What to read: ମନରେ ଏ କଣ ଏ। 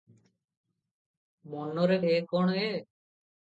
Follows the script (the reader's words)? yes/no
yes